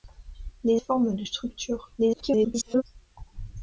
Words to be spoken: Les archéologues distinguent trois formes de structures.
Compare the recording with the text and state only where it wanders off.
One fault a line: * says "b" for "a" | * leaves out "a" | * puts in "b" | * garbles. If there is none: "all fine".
* leaves out "archéologues distinguent trois"
* garbles